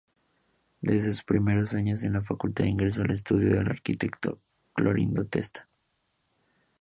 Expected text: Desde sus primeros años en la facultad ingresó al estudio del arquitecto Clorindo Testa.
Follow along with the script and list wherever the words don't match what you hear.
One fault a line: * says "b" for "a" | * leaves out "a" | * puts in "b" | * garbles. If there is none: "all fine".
all fine